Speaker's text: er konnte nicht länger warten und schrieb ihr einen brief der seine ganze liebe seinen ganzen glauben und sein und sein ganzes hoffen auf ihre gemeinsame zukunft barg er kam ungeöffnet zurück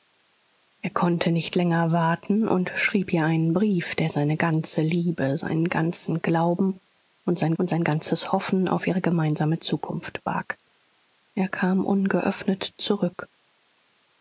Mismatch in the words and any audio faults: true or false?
false